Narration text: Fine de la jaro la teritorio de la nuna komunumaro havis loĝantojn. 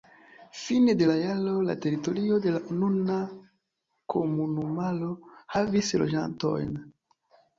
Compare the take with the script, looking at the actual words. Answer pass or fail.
pass